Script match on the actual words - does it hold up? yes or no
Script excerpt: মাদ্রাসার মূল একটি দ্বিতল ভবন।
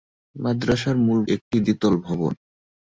yes